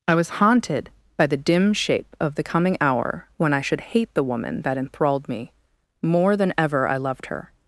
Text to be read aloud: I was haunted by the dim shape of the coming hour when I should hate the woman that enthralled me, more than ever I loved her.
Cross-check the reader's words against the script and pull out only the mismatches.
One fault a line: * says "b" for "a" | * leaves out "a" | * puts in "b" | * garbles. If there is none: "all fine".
all fine